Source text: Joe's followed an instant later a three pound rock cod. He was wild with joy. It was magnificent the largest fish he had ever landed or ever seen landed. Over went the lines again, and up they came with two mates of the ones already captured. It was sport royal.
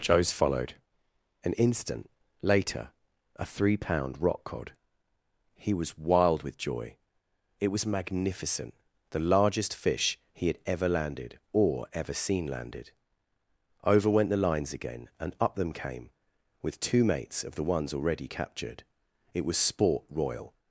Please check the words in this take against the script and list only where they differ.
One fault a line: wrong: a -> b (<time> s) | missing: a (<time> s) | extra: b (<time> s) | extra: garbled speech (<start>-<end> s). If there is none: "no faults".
wrong: they -> them (15.6 s)